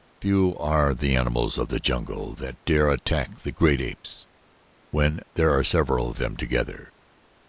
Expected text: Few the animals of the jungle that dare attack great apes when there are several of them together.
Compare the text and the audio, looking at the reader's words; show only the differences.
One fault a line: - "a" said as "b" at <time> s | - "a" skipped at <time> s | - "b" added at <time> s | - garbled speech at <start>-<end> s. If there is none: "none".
- "are" added at 0.6 s
- "the" added at 3.4 s